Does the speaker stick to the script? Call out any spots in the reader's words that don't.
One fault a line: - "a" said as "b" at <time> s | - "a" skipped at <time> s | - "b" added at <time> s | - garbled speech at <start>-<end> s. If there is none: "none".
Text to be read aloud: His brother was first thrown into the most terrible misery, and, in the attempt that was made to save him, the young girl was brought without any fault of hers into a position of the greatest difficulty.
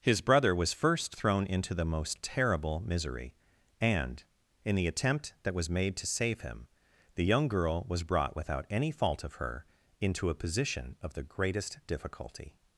- "hers" said as "her" at 9.3 s